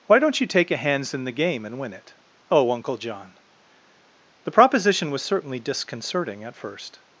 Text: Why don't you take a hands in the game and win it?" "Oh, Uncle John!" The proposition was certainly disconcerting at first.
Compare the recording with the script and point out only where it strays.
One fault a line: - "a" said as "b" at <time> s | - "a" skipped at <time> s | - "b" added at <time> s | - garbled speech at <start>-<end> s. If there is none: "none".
none